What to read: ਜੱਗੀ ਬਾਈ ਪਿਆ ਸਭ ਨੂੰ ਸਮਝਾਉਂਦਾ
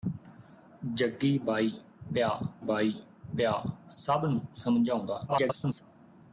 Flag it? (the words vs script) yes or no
yes